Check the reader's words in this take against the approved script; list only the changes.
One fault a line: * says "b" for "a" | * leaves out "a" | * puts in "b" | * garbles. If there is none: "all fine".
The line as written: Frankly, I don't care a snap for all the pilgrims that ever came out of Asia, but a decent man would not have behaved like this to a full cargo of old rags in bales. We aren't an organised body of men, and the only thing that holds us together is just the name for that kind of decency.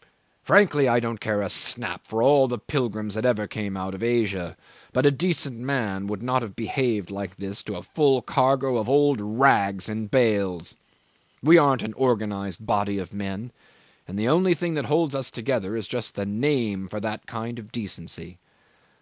all fine